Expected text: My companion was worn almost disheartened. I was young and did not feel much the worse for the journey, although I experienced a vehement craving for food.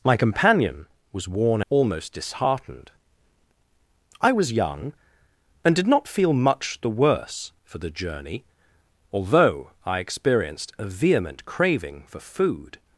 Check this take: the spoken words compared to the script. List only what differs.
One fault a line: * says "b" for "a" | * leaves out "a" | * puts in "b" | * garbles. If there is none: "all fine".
all fine